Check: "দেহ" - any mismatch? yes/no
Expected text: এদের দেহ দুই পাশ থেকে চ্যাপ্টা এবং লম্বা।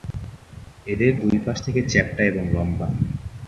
yes